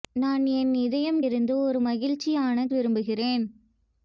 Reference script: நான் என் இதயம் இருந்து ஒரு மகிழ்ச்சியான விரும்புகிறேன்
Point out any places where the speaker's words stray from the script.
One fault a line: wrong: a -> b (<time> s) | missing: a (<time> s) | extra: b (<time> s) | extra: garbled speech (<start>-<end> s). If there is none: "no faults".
no faults